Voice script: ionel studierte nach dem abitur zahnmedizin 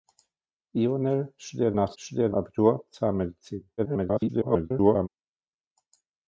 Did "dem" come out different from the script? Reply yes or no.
yes